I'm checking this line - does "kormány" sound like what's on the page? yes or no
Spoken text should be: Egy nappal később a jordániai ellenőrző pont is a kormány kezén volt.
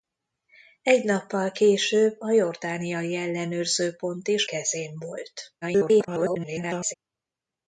no